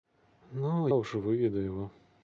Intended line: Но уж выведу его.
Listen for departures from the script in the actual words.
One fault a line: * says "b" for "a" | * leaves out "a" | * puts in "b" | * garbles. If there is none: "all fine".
all fine